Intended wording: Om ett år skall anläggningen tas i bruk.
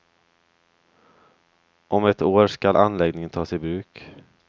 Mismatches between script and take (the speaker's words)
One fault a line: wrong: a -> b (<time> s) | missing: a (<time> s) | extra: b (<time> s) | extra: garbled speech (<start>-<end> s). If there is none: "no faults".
no faults